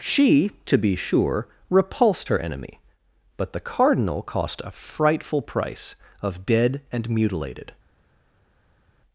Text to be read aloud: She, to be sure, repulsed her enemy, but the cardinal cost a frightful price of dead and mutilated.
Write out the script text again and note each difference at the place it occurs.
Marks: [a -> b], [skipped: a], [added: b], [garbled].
She, to be sure, repulsed her enemy, but the cardinal cost a frightful price of dead and mutilated.